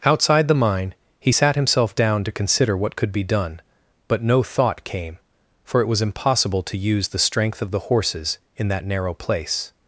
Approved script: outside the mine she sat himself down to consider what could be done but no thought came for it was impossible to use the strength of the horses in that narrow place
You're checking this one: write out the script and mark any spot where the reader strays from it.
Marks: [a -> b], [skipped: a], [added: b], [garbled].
outside the mine [she -> he] sat himself down to consider what could be done but no thought came for it was impossible to use the strength of the horses in that narrow place